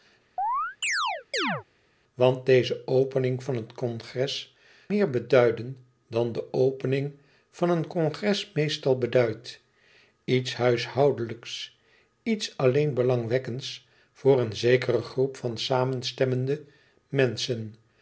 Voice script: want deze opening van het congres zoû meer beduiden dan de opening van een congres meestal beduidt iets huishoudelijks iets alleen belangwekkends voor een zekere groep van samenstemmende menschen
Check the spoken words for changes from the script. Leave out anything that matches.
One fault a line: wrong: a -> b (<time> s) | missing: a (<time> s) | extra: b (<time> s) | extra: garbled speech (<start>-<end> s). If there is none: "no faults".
missing: zoû (4.6 s)